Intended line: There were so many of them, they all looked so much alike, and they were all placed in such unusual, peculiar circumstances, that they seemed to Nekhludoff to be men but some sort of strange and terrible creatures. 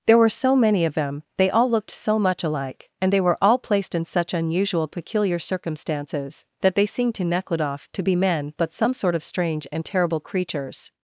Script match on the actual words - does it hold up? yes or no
yes